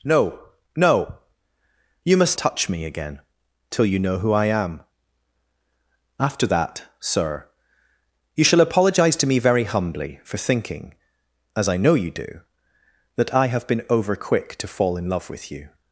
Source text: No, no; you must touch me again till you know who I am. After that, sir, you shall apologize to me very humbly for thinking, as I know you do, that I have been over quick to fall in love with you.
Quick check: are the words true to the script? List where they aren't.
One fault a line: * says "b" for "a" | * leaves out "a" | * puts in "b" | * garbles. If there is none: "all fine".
all fine